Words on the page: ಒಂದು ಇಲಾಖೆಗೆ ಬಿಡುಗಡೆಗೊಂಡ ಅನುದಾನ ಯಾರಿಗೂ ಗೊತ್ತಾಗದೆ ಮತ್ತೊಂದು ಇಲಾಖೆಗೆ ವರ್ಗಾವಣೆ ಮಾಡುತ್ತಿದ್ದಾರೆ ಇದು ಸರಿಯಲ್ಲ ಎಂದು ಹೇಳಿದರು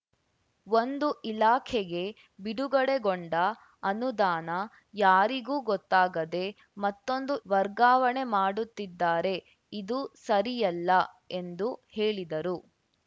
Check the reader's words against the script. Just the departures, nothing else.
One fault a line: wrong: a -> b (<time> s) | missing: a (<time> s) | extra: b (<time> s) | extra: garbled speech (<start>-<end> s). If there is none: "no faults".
missing: ಇಲಾಖೆಗೆ (7.3 s)